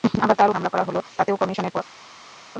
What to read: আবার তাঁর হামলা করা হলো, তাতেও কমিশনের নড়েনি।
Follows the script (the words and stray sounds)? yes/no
yes